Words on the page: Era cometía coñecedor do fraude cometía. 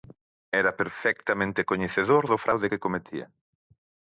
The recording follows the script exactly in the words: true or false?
false